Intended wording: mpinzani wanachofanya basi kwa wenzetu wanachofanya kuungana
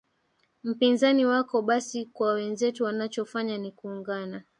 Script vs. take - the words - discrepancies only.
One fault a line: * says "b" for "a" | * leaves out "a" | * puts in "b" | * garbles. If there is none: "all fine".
* says "wako" for "wanachofanya"
* puts in "ni"